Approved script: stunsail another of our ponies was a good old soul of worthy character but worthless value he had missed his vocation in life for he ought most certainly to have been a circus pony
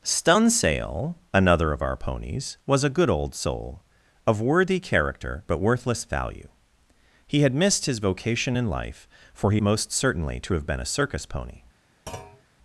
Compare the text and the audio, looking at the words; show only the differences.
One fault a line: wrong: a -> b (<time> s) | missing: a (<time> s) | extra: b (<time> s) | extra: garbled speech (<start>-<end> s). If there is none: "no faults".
missing: ought (9.6 s)